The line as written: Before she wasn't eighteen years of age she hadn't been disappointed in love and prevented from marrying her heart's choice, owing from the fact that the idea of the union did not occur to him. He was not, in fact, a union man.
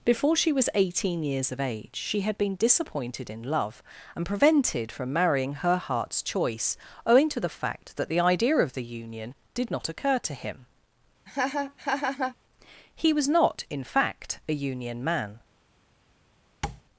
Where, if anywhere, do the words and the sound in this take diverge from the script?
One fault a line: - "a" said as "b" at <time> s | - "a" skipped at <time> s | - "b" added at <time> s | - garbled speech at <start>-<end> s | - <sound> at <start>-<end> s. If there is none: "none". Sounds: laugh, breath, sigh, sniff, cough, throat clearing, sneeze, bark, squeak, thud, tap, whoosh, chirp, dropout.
- "wasn't" said as "was" at 0.5 s
- "hadn't" said as "had" at 2.2 s
- "from" said as "to" at 7.3 s
- laugh at 11.3-12.4 s
- tap at 16.6-16.8 s